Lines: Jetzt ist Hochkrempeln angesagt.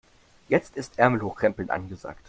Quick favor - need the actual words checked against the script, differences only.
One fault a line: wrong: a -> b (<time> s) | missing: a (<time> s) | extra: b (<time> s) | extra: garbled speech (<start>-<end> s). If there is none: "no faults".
extra: Ärmel (1.0 s)